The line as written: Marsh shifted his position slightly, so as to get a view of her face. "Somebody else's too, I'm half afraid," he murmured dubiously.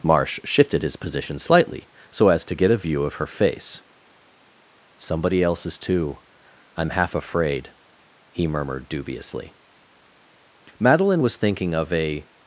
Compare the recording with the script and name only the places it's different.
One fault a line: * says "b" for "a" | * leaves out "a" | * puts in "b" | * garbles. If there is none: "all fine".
* puts in "Madeline was thinking of a"